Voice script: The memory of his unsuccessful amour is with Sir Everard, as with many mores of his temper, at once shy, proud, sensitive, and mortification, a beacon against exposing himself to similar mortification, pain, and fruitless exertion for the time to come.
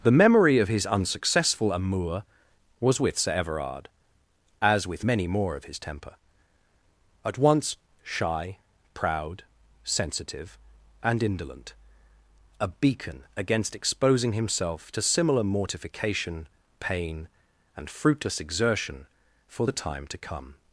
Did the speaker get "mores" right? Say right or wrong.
wrong